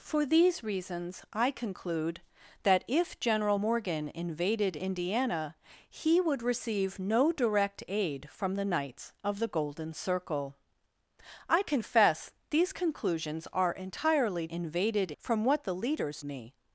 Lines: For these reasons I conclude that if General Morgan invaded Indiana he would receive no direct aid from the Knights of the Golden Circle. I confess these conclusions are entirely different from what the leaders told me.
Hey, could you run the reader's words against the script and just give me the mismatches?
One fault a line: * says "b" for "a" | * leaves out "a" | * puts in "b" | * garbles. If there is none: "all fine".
* says "invaded" for "different"
* leaves out "told"